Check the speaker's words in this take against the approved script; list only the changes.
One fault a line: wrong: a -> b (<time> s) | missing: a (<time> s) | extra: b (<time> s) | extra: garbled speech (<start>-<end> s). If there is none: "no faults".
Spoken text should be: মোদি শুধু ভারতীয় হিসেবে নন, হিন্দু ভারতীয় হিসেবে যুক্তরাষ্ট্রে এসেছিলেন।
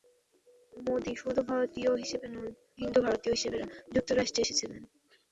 no faults